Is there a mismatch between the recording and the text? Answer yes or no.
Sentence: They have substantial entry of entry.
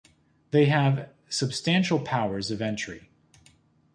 yes